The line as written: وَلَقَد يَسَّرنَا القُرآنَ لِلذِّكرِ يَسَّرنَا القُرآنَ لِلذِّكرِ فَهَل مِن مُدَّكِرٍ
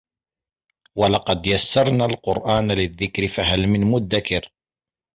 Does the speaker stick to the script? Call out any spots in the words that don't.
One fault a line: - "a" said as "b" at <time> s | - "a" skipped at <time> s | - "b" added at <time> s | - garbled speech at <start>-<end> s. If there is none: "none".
- "يَسَّرنَا القُرآنَ لِلذِّكرِ" skipped at 3.3 s